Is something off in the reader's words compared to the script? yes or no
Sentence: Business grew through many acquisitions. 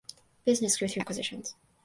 yes